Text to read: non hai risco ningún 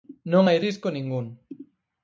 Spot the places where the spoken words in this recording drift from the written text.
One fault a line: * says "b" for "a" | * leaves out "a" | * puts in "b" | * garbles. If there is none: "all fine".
all fine